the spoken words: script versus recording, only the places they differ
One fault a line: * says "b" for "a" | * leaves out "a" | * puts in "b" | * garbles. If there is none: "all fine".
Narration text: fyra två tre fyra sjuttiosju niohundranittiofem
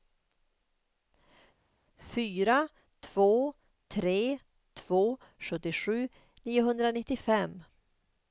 * says "två" for "fyra"